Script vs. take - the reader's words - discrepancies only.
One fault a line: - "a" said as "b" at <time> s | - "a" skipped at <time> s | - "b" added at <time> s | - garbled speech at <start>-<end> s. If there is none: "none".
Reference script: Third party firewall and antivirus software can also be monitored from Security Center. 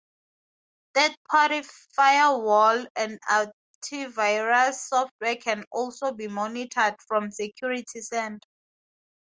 none